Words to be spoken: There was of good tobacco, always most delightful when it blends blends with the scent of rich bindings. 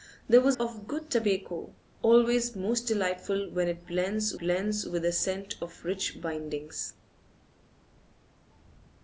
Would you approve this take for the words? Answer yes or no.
yes